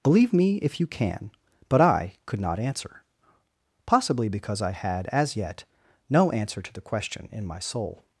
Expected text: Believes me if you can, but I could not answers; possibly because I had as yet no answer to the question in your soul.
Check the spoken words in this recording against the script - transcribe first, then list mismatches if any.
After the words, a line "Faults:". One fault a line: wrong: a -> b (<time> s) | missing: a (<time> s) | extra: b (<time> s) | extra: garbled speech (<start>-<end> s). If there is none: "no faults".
Believe me if you can, but I could not answer; possibly because I had as yet no answer to the question in my soul.
Faults:
wrong: Believes -> Believe (0.0 s)
wrong: answers -> answer (2.6 s)
wrong: your -> my (7.5 s)